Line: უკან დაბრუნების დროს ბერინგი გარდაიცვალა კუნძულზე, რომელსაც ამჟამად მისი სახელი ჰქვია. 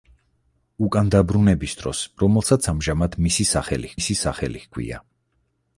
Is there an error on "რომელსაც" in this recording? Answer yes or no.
yes